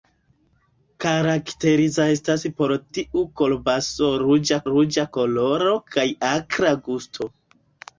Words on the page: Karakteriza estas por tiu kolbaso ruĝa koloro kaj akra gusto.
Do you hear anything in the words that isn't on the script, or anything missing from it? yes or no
yes